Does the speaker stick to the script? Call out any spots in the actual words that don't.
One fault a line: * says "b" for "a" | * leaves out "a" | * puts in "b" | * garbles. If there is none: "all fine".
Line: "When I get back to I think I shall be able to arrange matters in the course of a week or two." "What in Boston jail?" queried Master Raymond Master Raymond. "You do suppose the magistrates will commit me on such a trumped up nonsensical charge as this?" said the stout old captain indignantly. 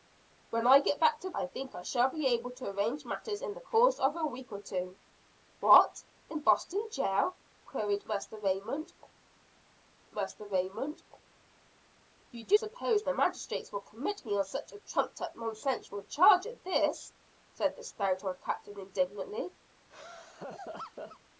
all fine